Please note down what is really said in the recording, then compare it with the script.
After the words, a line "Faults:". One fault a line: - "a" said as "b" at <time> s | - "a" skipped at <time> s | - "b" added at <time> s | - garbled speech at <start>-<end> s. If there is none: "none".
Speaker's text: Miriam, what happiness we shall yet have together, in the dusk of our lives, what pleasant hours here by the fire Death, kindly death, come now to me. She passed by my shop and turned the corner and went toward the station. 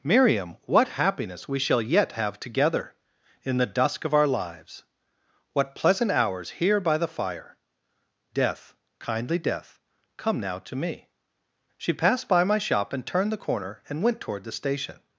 Miriam, what happiness we shall yet have together, in the dusk of our lives, what pleasant hours here by the fire Death, kindly death, come now to me. She passed by my shop and turned the corner and went toward the station.
Faults:
none